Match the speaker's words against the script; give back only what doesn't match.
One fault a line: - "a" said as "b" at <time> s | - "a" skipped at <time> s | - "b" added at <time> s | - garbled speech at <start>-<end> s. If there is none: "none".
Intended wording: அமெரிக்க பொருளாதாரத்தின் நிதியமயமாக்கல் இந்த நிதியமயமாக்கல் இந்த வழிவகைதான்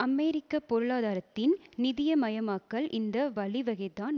- "நிதியமயமாக்கல் இந்த" skipped at 3.3 s